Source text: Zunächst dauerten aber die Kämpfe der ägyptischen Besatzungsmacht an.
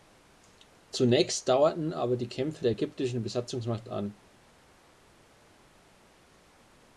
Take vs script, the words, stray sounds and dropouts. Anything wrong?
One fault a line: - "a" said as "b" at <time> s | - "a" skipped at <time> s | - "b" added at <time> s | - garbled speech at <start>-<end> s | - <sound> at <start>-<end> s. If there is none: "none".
none